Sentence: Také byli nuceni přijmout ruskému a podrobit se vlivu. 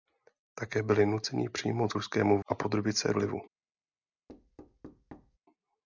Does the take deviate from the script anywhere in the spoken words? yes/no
no